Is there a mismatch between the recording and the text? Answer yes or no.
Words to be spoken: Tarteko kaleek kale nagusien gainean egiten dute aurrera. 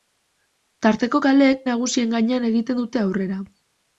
yes